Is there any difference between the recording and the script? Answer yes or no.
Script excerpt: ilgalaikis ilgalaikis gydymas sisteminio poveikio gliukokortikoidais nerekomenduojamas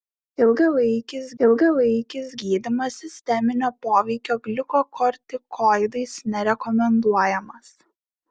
no